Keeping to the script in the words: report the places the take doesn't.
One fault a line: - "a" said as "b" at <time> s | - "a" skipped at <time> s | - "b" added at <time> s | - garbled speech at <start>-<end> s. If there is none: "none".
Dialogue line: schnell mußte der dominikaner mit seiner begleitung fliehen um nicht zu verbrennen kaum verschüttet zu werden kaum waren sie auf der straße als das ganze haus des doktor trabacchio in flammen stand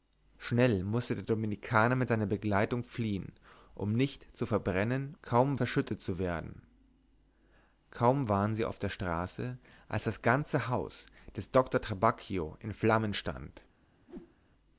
none